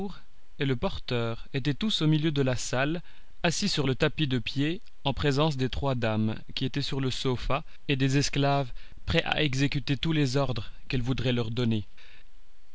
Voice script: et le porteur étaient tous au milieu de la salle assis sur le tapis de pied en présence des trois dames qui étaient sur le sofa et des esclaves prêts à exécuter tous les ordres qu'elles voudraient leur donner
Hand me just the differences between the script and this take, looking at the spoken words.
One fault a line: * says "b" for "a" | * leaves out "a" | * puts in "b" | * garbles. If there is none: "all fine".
all fine